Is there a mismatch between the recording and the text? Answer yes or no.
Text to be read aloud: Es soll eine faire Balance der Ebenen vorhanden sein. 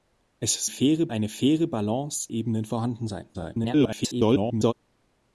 yes